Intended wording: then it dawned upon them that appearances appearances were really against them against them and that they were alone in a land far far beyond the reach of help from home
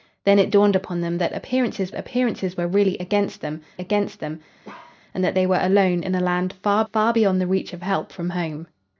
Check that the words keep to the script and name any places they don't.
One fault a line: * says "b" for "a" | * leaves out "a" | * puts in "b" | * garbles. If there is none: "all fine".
all fine